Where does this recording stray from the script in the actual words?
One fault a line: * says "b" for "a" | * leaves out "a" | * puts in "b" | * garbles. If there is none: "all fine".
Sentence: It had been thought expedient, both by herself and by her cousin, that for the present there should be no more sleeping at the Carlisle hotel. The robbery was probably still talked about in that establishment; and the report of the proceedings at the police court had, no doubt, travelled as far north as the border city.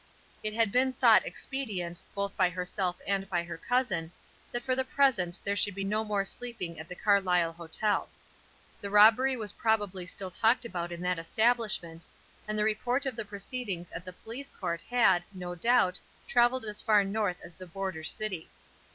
all fine